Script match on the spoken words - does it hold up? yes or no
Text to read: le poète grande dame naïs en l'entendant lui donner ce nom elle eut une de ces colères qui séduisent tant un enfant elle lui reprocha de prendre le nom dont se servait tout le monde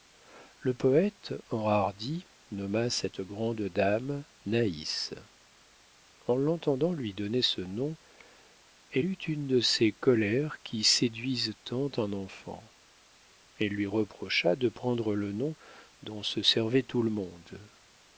no